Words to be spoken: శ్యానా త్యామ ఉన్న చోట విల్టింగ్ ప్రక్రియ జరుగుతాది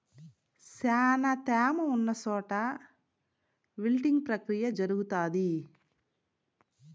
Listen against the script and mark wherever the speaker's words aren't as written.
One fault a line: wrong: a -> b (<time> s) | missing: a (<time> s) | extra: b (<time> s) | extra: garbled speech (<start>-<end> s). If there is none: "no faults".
no faults